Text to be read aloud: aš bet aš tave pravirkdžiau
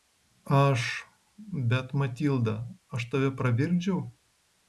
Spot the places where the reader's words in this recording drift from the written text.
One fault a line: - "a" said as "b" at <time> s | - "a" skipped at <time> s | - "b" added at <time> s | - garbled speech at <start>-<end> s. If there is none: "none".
- "matilda" added at 2.0 s